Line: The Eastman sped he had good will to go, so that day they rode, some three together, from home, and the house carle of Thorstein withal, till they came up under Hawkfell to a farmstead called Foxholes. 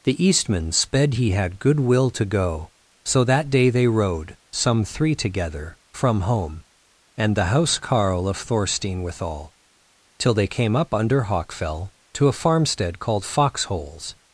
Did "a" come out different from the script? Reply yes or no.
no